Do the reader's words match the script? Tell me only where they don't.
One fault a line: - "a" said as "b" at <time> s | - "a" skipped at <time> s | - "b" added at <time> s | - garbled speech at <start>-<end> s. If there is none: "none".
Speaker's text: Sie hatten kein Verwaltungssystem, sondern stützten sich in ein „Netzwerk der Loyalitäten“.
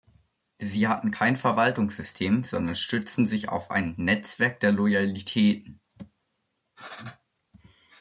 - "in" said as "auf" at 3.5 s